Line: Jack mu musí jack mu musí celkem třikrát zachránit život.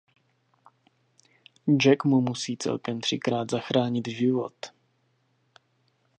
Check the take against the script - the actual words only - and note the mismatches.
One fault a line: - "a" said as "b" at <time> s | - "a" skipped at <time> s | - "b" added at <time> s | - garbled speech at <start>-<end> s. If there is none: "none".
- "jack mu musí" skipped at 2.6 s